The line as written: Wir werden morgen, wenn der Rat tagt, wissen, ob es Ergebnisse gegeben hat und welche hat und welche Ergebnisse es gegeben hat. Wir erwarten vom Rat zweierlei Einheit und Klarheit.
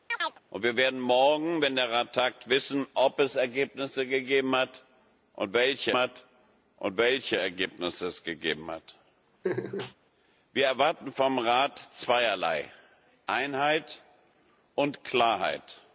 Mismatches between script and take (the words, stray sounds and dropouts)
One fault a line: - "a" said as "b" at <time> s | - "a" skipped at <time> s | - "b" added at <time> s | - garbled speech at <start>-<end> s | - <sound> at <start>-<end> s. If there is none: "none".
- chirp at 0.1-0.4 s
- laugh at 9.4-9.9 s